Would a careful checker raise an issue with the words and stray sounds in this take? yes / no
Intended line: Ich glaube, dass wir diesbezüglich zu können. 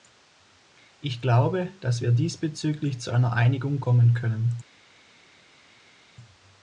yes